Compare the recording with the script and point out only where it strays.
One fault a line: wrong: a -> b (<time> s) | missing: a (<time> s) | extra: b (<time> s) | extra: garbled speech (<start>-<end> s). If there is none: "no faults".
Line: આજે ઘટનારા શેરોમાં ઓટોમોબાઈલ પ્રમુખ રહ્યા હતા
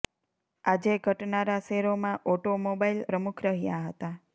no faults